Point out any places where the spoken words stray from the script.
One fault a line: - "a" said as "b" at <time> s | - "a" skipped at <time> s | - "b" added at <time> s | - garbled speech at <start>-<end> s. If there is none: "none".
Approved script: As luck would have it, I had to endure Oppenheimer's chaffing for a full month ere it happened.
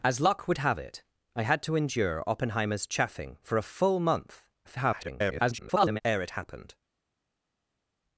- garbled speech at 4.6-6.0 s